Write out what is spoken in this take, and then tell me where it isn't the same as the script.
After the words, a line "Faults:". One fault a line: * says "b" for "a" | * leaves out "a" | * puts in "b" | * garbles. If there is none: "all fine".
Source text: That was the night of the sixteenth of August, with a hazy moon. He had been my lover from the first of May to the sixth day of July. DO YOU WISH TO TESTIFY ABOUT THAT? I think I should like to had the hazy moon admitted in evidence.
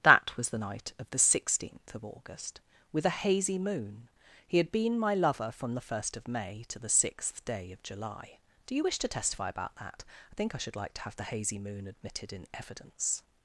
That was the night of the sixteenth of August, with a hazy moon. He had been my lover from the first of May to the sixth day of July. DO YOU WISH TO TESTIFY ABOUT THAT? I think I should like to have the hazy moon admitted in evidence.
Faults:
* says "have" for "had"